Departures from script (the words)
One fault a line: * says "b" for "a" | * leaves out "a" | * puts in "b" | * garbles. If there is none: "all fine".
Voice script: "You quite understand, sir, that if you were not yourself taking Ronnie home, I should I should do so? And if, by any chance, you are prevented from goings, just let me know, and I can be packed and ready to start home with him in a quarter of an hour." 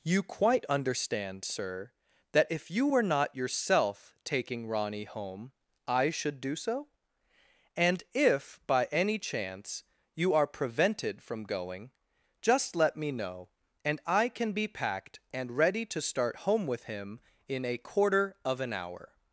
* leaves out "I should"
* says "going" for "goings"